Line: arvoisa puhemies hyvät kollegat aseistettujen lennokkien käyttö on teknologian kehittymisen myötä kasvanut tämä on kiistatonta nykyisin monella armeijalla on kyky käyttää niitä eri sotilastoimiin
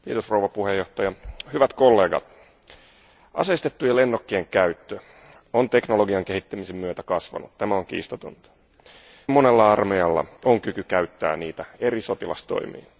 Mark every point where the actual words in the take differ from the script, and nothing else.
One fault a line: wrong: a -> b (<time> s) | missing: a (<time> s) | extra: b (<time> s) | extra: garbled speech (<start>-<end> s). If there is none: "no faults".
missing: nykyisin (8.5 s)